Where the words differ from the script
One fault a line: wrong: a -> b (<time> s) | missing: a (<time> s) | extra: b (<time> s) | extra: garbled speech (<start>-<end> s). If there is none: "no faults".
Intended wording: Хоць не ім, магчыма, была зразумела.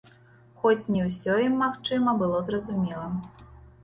extra: ўсё (1.1 s)
wrong: была -> было (2.2 s)